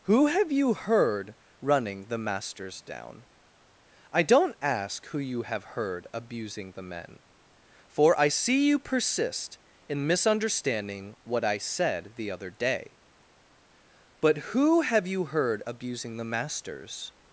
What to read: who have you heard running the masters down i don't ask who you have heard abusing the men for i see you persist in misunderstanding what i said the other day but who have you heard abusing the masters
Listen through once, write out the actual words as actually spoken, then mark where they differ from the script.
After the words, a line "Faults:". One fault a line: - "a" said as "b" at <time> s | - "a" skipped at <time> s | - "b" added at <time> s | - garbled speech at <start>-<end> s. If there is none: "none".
who have you heard running the masters down i don't ask who you have heard abusing the men for i see you persist in misunderstanding what i said the other day but who have you heard abusing the masters
Faults:
none